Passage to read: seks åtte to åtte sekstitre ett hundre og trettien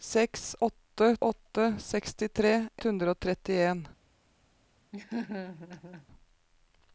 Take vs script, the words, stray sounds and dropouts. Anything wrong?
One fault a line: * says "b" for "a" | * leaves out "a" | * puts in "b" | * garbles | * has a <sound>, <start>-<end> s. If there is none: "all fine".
* leaves out "to"
* leaves out "ett"
* has a laugh, 4.9-6.1 s